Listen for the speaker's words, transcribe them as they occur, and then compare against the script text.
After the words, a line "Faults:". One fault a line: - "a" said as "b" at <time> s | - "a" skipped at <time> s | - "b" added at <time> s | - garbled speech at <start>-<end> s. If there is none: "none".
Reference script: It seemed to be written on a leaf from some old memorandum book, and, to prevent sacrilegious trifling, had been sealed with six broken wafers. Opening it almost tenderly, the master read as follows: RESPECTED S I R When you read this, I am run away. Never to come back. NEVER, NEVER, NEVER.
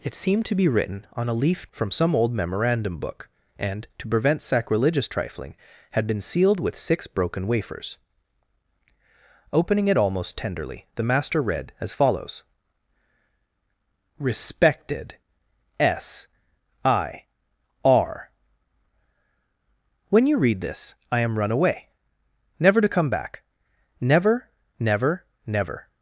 It seemed to be written on a leaf from some old memorandum book, and, to prevent sacrilegious trifling, had been sealed with six broken wafers. Opening it almost tenderly, the master read as follows: RESPECTED S I R When you read this, I am run away. Never to come back. NEVER, NEVER, NEVER.
Faults:
none